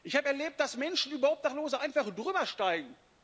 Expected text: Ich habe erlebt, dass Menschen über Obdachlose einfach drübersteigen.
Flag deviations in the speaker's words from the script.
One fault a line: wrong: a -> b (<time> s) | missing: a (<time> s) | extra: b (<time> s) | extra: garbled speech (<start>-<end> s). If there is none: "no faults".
no faults